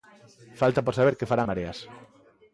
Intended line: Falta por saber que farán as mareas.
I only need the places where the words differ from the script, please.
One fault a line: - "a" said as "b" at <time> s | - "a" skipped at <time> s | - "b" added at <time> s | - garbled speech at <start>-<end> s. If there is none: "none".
- "as" skipped at 1.5 s